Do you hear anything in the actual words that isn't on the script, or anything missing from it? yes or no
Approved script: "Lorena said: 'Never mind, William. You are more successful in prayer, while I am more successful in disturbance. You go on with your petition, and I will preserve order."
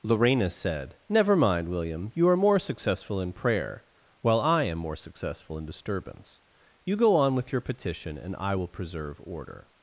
no